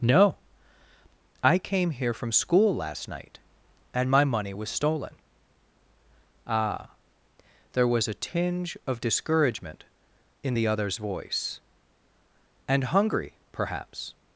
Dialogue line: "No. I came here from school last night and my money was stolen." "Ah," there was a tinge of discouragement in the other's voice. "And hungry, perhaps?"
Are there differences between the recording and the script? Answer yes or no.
no